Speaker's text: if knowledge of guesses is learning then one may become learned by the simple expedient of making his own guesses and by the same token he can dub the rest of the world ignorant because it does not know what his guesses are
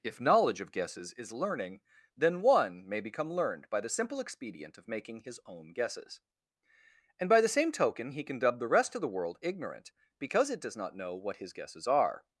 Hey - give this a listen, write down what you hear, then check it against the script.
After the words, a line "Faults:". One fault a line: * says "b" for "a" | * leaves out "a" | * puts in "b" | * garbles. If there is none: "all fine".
if knowledge of guesses is learning then one may become learned by the simple expedient of making his own guesses and by the same token he can dub the rest of the world ignorant because it does not know what his guesses are
Faults:
all fine